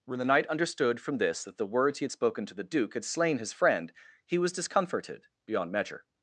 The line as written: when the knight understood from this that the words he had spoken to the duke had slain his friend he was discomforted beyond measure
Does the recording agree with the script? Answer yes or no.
yes